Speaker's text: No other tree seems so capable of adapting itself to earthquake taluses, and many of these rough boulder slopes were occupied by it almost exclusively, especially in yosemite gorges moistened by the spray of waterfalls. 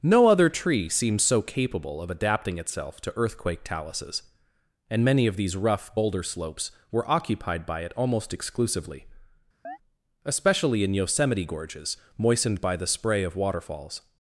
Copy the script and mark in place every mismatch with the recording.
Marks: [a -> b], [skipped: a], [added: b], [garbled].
No other tree seems so capable of adapting itself to earthquake taluses, and many of these rough boulder slopes were occupied by it almost exclusively, especially in yosemite gorges moistened by the spray of waterfalls.